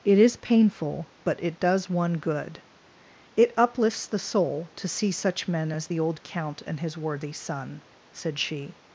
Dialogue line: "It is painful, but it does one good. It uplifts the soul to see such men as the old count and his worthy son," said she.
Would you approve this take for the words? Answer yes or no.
yes